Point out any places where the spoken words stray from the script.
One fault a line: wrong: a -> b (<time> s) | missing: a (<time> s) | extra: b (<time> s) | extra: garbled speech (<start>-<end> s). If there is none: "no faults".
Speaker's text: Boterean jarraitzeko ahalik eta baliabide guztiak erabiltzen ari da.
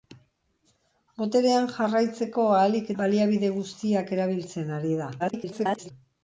missing: eta (2.9 s)
extra: garbled speech (5.2-5.9 s)